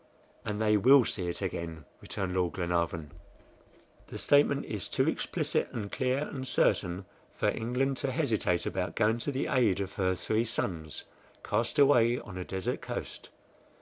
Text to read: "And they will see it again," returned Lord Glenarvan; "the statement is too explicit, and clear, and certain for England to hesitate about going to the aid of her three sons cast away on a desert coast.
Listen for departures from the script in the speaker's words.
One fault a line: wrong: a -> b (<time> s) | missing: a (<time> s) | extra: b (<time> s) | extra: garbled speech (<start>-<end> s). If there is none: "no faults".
no faults